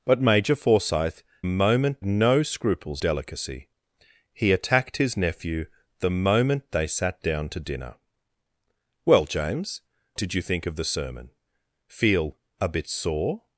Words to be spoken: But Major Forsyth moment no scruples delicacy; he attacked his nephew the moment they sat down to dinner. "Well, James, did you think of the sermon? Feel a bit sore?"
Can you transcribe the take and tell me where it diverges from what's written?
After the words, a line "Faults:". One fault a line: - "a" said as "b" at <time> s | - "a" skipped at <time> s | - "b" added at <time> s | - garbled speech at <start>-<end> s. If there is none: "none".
But Major Forsyth moment no scruples delicacy; he attacked his nephew the moment they sat down to dinner. "Well, James, did you think of the sermon? Feel a bit sore?"
Faults:
none